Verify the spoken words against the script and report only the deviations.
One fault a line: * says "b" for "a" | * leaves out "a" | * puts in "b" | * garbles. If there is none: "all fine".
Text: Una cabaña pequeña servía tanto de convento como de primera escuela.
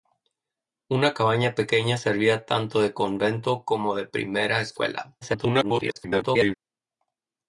* garbles